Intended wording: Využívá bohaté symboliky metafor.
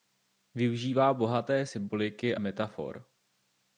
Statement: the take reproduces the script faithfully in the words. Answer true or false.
true